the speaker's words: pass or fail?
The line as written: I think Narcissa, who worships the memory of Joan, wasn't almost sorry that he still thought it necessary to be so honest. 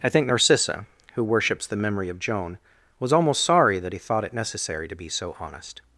fail